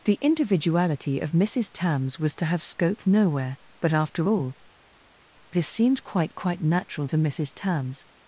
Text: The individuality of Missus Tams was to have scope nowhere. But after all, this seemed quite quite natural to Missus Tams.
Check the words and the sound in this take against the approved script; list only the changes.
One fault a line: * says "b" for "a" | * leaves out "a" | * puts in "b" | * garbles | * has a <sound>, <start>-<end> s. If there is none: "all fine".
all fine